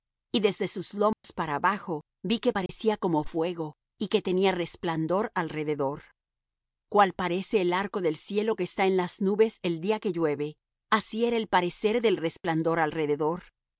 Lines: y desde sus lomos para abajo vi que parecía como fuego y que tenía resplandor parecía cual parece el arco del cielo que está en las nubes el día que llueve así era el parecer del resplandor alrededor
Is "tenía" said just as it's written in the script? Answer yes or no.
yes